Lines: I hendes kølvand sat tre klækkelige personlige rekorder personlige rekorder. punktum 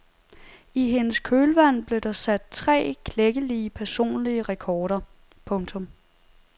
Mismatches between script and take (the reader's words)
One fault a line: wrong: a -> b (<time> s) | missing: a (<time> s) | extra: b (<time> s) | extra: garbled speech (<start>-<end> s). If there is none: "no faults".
extra: blev der (1.9 s)
missing: personlige rekorder (5.0 s)